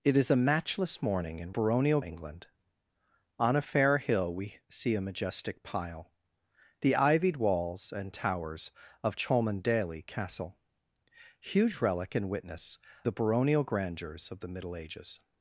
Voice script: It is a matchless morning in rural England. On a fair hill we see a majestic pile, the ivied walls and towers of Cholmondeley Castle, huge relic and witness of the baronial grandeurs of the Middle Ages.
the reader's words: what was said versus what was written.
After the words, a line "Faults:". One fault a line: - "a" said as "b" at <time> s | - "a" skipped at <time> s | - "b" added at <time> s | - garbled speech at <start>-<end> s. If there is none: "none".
It is a matchless morning in baronial England. On a fair hill we see a majestic pile, the ivied walls and towers of Cholmondeley Castle, huge relic and witness the baronial grandeurs of the Middle Ages.
Faults:
- "rural" said as "baronial" at 1.5 s
- "of" skipped at 12.8 s